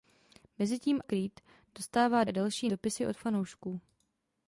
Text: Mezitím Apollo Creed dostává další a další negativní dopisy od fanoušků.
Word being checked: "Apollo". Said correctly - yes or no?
no